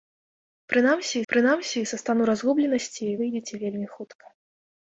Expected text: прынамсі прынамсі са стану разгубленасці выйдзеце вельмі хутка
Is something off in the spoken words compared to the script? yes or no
no